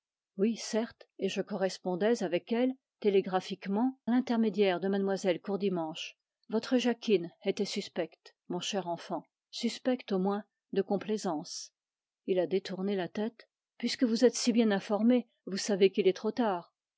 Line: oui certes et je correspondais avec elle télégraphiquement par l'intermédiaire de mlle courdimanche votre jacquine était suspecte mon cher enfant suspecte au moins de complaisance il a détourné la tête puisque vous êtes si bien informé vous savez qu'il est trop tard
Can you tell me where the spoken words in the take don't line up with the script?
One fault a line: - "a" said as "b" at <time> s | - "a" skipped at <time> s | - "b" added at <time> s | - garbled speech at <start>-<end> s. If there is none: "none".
- "par" skipped at 4.0 s